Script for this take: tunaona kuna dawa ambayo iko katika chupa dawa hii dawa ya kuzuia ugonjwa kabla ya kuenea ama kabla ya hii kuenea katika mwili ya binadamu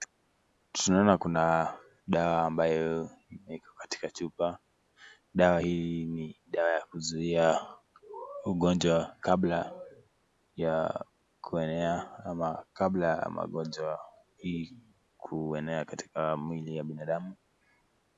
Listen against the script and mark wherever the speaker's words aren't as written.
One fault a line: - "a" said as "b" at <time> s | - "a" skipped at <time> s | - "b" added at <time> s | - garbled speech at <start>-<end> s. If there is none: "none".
- "ni" added at 6.0 s
- "magonjwa" added at 13.3 s